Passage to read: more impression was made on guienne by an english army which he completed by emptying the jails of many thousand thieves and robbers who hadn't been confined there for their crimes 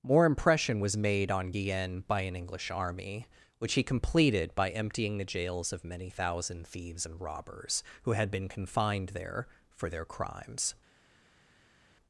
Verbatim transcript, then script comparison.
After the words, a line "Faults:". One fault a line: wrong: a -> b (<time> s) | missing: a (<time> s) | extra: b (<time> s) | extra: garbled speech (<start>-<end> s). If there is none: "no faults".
more impression was made on guienne by an english army which he completed by emptying the jails of many thousand thieves and robbers who had been confined there for their crimes
Faults:
wrong: hadn't -> had (8.1 s)